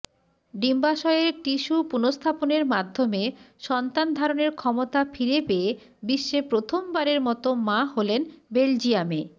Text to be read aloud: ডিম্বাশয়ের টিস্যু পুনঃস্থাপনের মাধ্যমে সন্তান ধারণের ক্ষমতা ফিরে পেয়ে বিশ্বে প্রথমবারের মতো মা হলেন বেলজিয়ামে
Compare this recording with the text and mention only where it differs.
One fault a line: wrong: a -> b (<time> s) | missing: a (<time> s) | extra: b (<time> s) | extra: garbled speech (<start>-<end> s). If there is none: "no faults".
no faults